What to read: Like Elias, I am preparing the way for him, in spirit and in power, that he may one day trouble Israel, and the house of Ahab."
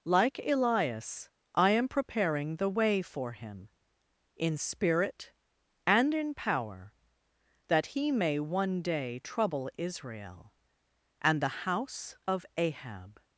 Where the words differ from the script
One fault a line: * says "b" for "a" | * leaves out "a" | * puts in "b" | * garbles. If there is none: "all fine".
all fine